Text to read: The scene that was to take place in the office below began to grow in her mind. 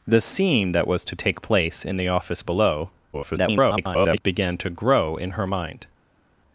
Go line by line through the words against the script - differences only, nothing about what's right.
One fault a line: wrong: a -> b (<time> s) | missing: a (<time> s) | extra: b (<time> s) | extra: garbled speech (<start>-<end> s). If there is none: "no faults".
extra: garbled speech (3.1-4.2 s)